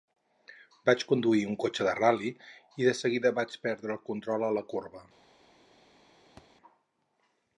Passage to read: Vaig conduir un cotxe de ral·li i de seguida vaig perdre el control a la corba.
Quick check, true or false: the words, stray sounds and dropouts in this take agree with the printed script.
false